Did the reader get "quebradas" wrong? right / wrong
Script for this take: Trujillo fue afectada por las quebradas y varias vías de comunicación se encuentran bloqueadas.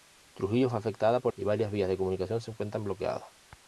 wrong